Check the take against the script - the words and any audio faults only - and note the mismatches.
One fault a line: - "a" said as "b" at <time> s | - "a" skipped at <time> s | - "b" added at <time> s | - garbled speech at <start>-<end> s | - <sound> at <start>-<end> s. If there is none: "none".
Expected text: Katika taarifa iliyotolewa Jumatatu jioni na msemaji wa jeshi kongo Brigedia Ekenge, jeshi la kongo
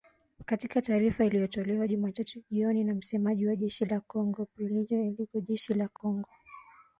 - "la" added at 3.9 s
- dropout at 6.0-6.0 s